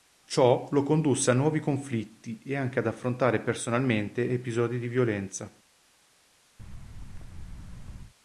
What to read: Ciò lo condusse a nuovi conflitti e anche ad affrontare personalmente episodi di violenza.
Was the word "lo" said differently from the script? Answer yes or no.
no